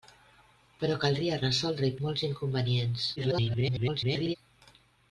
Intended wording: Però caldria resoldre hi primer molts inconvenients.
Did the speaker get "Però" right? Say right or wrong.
right